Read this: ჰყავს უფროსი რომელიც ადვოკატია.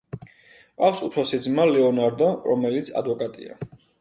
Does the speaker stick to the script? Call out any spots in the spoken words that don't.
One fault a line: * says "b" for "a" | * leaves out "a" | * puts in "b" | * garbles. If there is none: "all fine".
* puts in "ძმა ლეონარდო"